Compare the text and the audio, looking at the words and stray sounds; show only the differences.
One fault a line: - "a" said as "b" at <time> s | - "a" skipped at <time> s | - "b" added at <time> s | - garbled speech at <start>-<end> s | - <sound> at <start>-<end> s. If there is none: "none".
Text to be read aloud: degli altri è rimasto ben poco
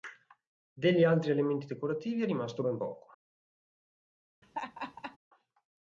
- "elementi decorativi" added at 1.3 s
- laugh at 4.4-5.2 s